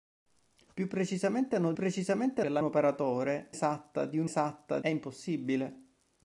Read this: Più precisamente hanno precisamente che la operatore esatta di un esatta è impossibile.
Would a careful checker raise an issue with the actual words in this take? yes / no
no